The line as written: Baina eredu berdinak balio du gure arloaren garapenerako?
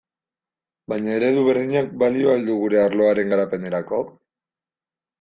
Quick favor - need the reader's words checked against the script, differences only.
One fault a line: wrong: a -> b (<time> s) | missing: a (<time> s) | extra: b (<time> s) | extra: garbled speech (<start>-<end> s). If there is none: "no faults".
extra: al (2.4 s)